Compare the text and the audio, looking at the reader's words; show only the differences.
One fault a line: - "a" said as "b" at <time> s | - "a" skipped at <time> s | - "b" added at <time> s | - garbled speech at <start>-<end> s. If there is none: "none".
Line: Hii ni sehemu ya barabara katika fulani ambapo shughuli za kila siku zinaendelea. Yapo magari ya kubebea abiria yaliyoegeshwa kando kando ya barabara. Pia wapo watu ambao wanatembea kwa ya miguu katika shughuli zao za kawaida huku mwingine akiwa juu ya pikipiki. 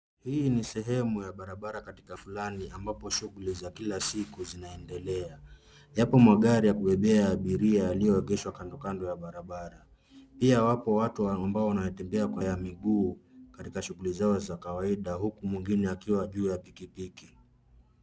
none